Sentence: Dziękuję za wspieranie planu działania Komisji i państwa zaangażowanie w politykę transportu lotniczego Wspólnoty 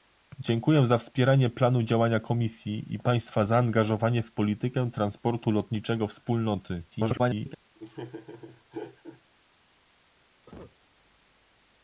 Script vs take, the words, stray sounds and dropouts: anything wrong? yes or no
yes